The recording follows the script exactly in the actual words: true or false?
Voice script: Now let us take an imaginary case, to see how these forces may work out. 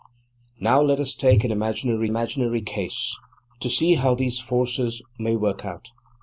false